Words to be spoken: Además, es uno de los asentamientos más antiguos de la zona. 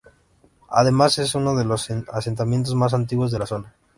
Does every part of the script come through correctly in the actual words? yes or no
yes